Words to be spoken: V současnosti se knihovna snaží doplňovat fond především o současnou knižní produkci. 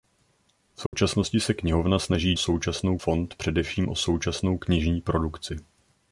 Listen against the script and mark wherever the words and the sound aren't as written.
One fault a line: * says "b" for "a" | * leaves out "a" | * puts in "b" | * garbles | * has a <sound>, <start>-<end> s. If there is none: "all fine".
* has a dropout, 0.9-0.9 s
* says "současnou" for "doplňovat"